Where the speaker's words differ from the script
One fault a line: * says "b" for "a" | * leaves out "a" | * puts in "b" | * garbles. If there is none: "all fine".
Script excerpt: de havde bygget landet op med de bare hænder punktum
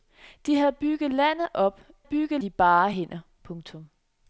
* says "bygget" for "med"